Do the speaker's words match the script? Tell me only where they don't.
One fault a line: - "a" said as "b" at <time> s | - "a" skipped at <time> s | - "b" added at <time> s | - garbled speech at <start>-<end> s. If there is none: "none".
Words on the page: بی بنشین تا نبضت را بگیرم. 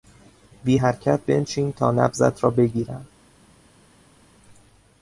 - "حرکت" added at 0.7 s